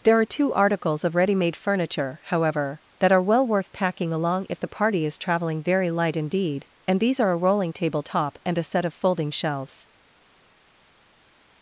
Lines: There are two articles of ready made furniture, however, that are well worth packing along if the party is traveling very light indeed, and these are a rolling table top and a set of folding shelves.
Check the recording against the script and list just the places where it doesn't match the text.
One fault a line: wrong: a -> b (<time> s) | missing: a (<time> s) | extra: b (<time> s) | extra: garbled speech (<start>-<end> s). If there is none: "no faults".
no faults